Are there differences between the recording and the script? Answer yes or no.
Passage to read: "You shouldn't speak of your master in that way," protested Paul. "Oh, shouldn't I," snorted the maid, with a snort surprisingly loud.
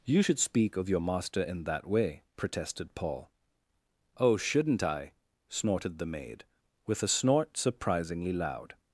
yes